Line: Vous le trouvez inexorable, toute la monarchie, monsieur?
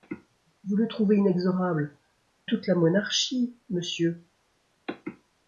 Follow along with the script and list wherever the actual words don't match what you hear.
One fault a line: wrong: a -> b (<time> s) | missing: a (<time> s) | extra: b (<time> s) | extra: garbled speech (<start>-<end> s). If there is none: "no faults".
no faults